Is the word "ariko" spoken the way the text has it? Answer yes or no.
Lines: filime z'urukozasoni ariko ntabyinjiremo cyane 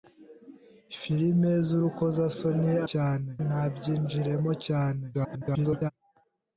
no